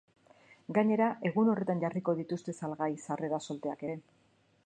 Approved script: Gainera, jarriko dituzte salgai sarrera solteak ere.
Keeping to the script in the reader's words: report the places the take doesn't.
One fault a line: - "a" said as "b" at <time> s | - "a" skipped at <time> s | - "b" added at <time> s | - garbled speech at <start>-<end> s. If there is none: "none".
- "egun horretan" added at 1.3 s